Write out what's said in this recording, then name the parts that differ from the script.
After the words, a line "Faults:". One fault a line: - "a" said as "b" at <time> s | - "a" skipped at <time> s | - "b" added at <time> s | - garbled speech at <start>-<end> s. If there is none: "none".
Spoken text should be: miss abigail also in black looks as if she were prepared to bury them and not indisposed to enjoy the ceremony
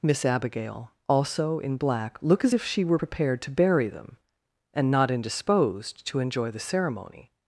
miss abigail also in black look as if she were prepared to bury them and not indisposed to enjoy the ceremony
Faults:
- "looks" said as "look" at 2.2 s